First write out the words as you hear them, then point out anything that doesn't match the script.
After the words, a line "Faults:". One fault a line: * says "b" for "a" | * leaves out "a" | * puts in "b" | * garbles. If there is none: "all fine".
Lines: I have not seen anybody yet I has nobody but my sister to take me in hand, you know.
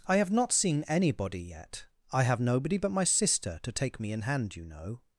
I have not seen anybody yet I have nobody but my sister to take me in hand, you know.
Faults:
* says "have" for "has"